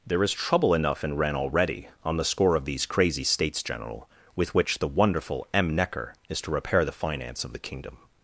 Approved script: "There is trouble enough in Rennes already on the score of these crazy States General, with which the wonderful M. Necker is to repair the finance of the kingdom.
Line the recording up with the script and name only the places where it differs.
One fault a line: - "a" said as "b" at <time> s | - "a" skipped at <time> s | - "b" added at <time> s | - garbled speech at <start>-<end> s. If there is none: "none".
none